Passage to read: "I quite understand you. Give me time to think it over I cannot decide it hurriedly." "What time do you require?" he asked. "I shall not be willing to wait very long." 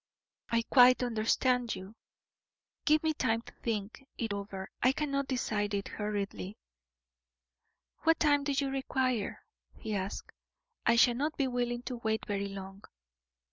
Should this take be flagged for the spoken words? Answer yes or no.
no